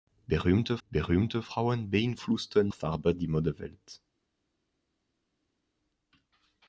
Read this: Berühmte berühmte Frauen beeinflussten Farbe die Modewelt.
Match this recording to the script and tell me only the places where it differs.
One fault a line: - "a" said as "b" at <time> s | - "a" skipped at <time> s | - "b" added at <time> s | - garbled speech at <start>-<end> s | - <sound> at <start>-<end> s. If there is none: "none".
none